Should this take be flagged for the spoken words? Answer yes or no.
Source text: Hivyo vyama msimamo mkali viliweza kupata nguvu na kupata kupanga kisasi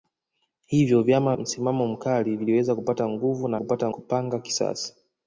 no